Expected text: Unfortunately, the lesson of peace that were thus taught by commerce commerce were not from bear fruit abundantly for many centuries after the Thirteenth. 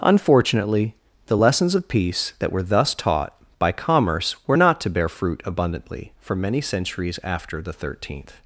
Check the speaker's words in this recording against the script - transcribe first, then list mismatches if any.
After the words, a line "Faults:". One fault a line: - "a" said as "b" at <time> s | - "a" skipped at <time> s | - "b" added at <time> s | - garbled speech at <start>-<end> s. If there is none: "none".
Unfortunately, the lessons of peace that were thus taught by commerce were not to bear fruit abundantly for many centuries after the Thirteenth.
Faults:
- "lesson" said as "lessons" at 1.4 s
- "commerce" skipped at 4.4 s
- "from" said as "to" at 4.8 s